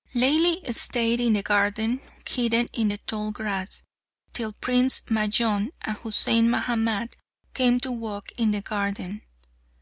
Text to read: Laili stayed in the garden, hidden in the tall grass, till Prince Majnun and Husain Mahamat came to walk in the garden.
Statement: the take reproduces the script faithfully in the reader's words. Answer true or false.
true